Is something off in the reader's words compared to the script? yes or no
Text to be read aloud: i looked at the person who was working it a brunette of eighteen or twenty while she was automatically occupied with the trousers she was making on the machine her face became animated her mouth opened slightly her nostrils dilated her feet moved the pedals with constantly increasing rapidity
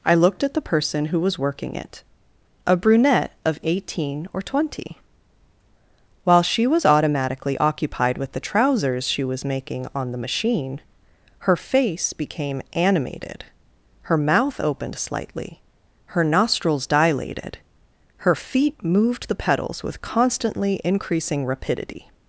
no